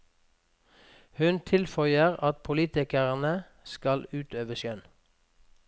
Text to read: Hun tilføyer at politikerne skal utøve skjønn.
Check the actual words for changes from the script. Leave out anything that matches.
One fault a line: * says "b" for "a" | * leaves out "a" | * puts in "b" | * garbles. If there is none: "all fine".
all fine